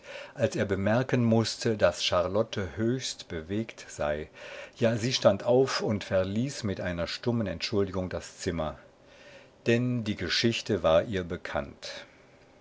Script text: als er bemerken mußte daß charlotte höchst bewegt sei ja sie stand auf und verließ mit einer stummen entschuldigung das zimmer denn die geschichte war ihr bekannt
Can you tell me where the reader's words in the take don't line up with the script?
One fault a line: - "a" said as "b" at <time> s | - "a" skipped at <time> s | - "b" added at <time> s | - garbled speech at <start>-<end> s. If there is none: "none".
none